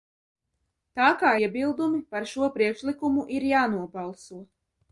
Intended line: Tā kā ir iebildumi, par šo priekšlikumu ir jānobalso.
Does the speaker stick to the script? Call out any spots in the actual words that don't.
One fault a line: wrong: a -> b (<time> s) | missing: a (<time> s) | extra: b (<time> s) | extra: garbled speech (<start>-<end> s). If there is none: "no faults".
missing: ir (1.3 s)